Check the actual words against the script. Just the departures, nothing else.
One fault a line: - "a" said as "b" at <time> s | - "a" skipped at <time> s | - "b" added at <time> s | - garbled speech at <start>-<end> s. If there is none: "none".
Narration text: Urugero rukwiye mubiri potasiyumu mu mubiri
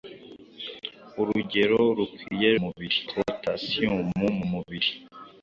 none